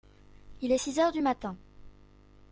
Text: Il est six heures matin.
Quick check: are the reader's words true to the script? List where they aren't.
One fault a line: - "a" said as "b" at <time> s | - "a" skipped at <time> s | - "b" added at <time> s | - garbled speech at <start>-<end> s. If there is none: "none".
- "du" added at 1.1 s